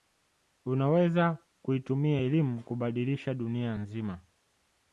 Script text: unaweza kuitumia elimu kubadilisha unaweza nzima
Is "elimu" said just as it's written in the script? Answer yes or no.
yes